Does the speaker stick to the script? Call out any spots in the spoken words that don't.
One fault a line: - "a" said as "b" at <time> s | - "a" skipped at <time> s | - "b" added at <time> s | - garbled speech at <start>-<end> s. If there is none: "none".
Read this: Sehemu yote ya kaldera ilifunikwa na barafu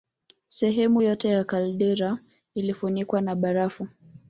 none